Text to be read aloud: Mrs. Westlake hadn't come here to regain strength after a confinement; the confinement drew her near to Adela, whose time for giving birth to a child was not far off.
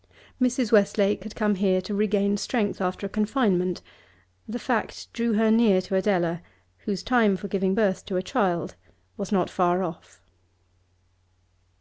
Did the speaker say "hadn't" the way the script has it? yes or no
no